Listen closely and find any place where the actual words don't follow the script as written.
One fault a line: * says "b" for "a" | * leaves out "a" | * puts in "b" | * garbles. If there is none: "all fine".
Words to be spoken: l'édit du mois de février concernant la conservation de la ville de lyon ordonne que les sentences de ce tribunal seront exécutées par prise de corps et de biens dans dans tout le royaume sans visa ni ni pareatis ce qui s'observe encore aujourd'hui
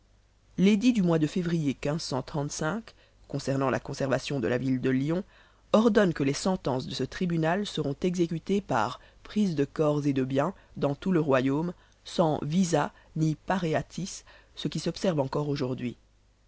* leaves out "dans"
* leaves out "ni"